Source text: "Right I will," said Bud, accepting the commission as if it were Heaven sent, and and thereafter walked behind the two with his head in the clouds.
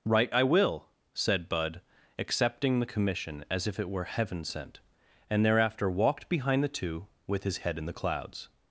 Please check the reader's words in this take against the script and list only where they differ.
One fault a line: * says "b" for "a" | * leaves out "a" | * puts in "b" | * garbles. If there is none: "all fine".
* leaves out "and"